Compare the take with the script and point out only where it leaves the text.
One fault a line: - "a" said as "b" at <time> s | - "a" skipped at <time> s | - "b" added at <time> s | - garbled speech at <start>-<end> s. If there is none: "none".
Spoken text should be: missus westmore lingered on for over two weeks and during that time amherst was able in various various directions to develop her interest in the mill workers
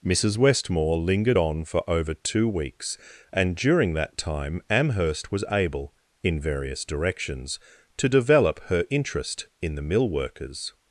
- "various" skipped at 6.8 s